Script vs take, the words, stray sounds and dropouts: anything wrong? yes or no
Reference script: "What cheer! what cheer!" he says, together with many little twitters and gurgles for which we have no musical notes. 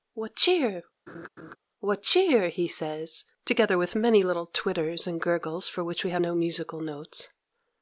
yes